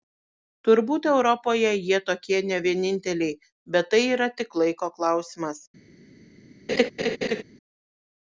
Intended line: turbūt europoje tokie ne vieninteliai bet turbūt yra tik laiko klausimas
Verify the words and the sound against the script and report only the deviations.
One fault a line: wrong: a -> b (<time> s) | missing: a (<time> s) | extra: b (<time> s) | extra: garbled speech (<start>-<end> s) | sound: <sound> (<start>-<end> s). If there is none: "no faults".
extra: jie (1.9 s)
wrong: turbūt -> tai (3.9 s)
sound: laugh (6.7-7.4 s)